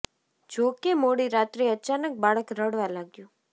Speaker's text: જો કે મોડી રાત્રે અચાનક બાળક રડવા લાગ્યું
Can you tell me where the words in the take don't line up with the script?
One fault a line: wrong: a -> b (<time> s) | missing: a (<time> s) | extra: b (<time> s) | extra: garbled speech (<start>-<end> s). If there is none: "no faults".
no faults